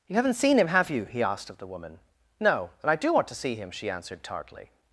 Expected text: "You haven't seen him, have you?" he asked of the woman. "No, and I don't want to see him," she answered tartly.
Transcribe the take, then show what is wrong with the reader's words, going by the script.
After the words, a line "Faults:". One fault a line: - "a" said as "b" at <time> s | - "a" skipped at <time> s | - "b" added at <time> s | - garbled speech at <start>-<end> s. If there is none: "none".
"You haven't seen him, have you?" he asked of the woman. "No, and I do want to see him," she answered tartly.
Faults:
- "don't" said as "do" at 2.9 s